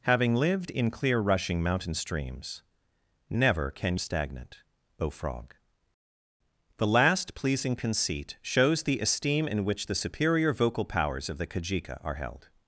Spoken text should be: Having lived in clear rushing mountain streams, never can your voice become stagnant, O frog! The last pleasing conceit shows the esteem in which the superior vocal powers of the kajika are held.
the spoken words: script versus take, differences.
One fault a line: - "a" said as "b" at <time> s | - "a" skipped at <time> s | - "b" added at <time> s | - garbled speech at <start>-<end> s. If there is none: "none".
- "your voice become" skipped at 4.0 s